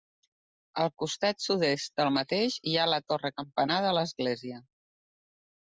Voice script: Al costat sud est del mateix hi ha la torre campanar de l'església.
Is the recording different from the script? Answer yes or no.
no